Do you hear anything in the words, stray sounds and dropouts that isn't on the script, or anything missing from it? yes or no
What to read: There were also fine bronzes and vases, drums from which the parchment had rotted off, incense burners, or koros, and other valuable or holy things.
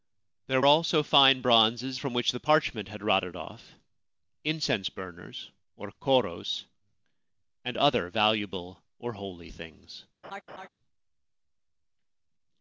yes